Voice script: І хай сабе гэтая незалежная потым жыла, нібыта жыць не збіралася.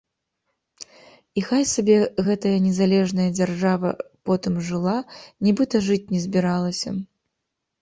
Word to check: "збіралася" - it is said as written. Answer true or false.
true